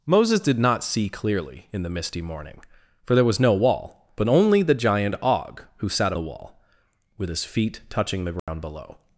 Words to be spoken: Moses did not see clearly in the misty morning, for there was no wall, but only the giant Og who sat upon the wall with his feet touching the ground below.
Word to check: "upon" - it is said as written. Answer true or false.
false